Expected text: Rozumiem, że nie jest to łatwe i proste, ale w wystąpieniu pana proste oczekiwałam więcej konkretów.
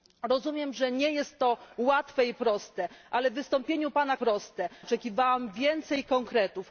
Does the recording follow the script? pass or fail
pass